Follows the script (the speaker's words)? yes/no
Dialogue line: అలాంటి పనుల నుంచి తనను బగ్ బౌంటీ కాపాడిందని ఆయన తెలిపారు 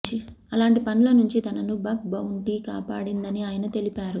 yes